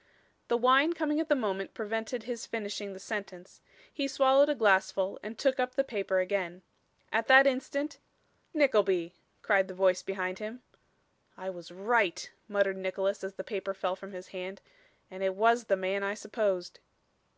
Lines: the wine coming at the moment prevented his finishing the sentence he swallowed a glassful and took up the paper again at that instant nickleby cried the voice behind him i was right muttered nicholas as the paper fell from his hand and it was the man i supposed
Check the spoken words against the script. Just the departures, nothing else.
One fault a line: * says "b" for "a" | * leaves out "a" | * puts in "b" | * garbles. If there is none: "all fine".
all fine